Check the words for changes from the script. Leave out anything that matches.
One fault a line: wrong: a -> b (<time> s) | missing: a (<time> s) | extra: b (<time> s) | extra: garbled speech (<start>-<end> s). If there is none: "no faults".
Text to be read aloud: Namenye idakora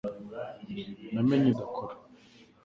no faults